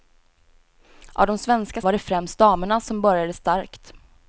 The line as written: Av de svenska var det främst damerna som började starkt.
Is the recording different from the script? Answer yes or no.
no